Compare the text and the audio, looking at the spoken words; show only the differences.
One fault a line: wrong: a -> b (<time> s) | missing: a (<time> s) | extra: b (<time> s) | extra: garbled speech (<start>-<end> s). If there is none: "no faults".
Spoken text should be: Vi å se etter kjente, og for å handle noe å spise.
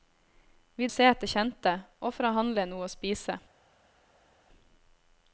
no faults